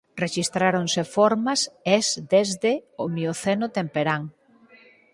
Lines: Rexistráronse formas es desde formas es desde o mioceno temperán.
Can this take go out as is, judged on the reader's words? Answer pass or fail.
fail